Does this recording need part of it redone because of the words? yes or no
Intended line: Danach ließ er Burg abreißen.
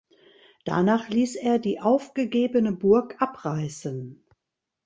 yes